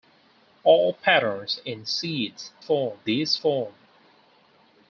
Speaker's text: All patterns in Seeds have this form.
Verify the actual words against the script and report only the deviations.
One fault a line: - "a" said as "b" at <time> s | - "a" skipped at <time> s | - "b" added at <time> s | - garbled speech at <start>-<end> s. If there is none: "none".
- "have" said as "form" at 2.6 s